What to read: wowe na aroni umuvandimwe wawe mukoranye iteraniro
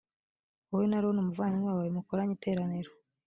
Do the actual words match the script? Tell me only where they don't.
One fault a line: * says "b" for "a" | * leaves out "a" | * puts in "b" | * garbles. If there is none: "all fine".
all fine